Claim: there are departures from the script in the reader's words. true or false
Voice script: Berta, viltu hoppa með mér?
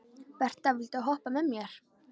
false